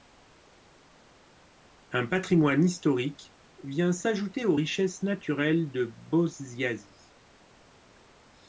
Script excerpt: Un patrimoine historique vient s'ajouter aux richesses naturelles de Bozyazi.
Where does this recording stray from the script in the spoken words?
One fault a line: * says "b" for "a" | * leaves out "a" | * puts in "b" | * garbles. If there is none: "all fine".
all fine